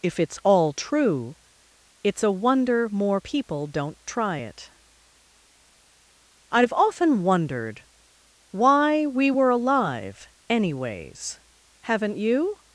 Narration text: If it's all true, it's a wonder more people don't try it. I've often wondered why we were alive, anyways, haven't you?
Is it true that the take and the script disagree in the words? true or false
false